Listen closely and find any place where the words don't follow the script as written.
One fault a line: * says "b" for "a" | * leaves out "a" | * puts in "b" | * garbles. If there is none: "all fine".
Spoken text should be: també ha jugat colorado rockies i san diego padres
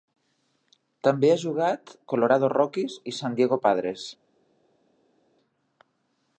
all fine